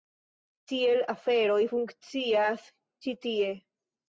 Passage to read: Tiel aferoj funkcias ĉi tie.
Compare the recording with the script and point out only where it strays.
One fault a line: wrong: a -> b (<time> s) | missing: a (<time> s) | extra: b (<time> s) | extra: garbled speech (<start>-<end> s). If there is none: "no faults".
no faults